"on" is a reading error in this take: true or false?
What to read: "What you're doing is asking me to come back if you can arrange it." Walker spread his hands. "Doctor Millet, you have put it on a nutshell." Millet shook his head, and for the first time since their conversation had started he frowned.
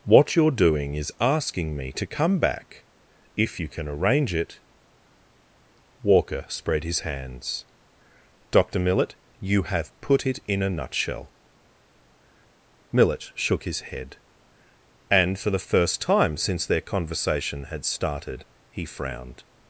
true